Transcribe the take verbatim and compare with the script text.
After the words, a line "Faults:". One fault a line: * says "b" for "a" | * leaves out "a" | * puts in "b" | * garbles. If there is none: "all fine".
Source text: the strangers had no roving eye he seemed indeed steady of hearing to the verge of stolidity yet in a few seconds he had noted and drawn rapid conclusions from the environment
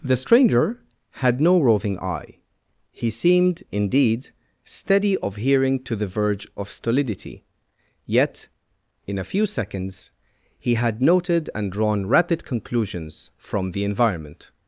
the stranger had no roving eye he seemed indeed steady of hearing to the verge of stolidity yet in a few seconds he had noted and drawn rapid conclusions from the environment
Faults:
* says "stranger" for "strangers"